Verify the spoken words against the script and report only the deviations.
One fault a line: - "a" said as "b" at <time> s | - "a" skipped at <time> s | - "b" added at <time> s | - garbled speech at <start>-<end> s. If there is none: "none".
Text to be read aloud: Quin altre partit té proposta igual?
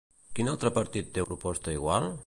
none